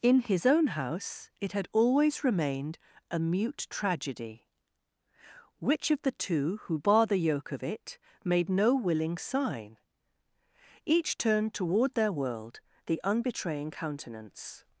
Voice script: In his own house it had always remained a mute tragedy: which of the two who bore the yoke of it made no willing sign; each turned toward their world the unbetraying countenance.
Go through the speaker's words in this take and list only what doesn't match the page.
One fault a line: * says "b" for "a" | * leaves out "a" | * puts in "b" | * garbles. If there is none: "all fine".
all fine